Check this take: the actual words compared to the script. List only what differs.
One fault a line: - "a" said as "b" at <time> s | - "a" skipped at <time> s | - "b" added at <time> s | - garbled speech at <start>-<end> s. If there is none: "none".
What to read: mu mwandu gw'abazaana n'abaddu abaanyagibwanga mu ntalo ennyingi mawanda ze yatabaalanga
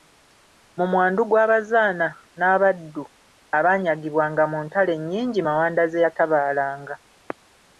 none